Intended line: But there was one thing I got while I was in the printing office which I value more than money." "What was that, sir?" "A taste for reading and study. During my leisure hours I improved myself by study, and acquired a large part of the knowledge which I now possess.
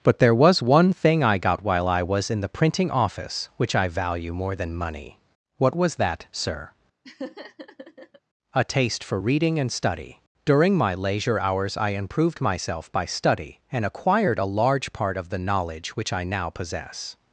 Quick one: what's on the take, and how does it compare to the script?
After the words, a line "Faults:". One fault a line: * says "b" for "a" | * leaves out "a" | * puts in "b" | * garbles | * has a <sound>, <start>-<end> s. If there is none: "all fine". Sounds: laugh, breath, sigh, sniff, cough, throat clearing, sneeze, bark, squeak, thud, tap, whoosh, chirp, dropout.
But there was one thing I got while I was in the printing office which I value more than money." "What was that, sir?" "A taste for reading and study. During my leisure hours I improved myself by study, and acquired a large part of the knowledge which I now possess.
Faults:
* has a laugh, 7.0-8.2 s